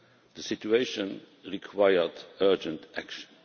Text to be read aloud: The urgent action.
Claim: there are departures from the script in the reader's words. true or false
true